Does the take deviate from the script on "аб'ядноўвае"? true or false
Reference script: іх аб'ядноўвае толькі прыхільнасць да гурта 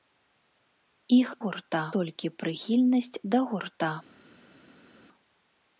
true